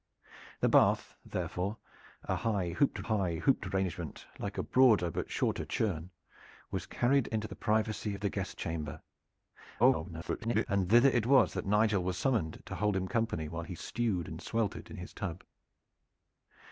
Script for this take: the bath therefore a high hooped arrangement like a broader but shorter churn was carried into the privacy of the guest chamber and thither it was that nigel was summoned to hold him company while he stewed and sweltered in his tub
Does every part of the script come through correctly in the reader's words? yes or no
no